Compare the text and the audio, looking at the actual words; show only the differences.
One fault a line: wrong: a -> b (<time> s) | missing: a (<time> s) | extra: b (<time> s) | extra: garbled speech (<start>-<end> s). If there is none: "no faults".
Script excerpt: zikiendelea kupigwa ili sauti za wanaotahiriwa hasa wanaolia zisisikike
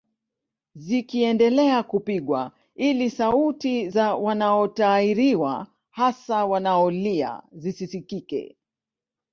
no faults